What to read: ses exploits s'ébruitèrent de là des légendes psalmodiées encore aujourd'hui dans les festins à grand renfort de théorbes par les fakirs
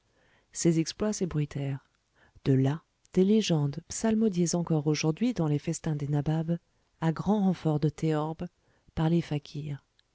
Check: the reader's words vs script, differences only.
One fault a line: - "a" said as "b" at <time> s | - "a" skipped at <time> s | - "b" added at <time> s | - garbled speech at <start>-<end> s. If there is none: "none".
- "des nababs" added at 6.0 s